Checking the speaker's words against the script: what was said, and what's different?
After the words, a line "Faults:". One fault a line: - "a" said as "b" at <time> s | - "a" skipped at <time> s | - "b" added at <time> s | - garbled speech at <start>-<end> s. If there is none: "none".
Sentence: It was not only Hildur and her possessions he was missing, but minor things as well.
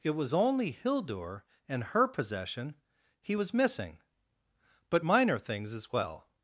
It was only Hildur and her possession he was missing, but minor things as well.
Faults:
- "not" skipped at 0.3 s
- "possessions" said as "possession" at 2.1 s